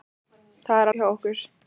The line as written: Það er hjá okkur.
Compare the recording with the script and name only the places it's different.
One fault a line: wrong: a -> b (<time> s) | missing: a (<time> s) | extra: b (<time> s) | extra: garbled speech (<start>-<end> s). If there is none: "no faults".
no faults